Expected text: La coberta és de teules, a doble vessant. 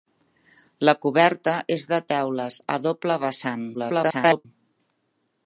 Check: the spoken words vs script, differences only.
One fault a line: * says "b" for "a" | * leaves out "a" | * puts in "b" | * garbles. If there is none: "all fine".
* garbles